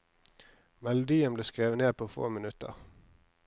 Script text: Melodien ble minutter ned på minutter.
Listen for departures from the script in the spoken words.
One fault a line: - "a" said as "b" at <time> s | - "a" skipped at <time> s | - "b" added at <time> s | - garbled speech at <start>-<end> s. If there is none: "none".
- "minutter" said as "skrevet" at 1.4 s
- "få" added at 2.1 s